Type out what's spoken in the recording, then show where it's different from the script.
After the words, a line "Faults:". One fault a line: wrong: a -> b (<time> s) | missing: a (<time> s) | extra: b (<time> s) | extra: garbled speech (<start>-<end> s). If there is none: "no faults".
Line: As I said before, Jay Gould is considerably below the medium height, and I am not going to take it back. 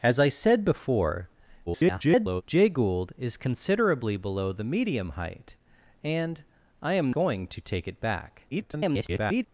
As I said before, [garbled] Jay Gould is considerably below the medium height, and I am going to take it back. [garbled]
Faults:
extra: garbled speech (1.7-2.4 s)
missing: not (7.1 s)
extra: garbled speech (8.5-9.4 s)